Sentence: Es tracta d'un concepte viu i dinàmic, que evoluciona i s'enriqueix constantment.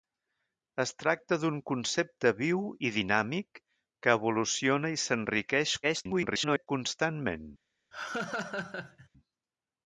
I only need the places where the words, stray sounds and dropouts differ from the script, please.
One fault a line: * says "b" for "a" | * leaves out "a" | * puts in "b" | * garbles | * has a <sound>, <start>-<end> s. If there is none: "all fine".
* garbles
* has a laugh, 7.9-9.1 s